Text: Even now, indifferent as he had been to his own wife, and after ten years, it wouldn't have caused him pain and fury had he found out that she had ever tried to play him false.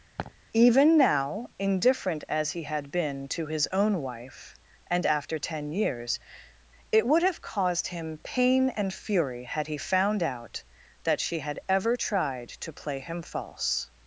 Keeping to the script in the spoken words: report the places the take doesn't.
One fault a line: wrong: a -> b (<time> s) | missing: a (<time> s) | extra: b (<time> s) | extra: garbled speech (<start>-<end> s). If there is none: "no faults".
wrong: wouldn't -> would (7.1 s)